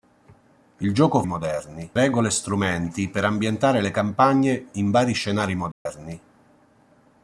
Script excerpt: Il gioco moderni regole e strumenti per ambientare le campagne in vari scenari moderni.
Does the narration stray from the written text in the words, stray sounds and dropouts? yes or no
yes